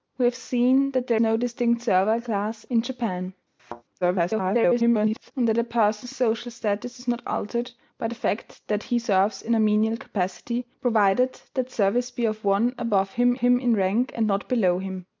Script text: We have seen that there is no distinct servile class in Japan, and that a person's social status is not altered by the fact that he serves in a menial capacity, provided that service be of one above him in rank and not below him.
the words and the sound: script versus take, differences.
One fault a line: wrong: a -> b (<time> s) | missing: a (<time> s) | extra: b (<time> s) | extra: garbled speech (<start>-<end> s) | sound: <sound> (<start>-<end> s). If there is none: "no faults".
missing: is (1.2 s)
sound: thud (3.6-3.8 s)
extra: garbled speech (4.0-5.3 s)
extra: him (13.4 s)